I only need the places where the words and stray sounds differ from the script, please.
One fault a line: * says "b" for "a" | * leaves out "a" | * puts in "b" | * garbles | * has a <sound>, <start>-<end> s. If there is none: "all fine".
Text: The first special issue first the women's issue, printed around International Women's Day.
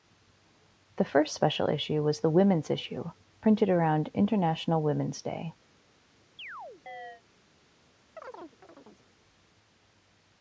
* says "was" for "first"
* has a chirp, 6.4-7.2 s
* has a chirp, 8.2-9.1 s